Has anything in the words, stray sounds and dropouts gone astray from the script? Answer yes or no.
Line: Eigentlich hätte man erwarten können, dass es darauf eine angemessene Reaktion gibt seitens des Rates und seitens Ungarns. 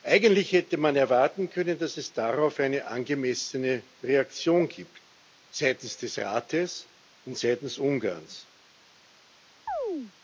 yes